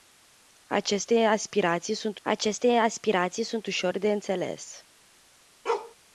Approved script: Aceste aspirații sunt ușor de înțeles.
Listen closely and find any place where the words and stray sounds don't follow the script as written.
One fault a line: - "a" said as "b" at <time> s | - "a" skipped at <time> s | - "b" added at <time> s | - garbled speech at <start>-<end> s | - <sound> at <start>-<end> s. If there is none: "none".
- "aceste aspirații sunt" added at 2.2 s
- bark at 5.7-6.0 s